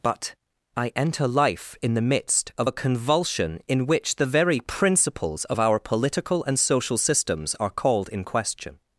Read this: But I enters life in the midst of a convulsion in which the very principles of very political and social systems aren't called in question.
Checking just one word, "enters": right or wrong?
wrong